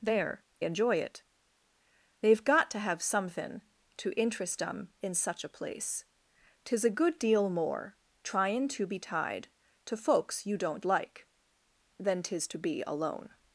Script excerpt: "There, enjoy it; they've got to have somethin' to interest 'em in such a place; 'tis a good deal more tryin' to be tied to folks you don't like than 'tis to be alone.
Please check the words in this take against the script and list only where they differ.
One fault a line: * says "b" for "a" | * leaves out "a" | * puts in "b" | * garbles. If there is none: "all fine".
all fine